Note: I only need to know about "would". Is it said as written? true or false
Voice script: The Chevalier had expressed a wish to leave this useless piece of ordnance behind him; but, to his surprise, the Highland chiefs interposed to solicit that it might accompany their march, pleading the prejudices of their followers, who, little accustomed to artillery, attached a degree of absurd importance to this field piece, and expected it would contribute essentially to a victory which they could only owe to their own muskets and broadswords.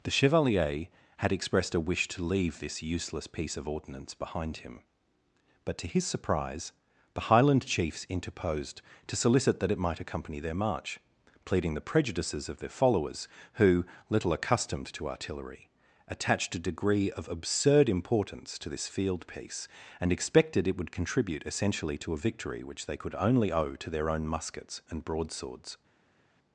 true